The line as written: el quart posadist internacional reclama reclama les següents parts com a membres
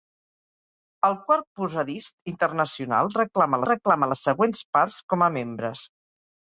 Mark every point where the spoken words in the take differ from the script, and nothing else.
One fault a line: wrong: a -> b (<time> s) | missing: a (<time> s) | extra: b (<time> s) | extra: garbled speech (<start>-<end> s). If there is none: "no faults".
no faults